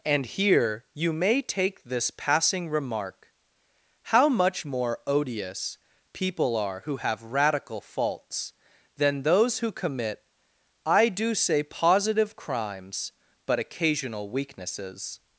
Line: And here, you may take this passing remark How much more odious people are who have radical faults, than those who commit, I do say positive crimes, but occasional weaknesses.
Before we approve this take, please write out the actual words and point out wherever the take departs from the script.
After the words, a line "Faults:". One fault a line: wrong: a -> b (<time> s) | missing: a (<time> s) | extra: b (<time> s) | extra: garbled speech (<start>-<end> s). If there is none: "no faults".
And here, you may take this passing remark How much more odious people are who have radical faults, than those who commit, I do say positive crimes, but occasional weaknesses.
Faults:
no faults